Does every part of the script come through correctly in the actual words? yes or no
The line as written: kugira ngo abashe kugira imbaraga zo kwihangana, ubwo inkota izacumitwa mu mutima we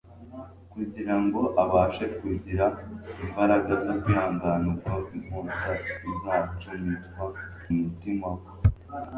no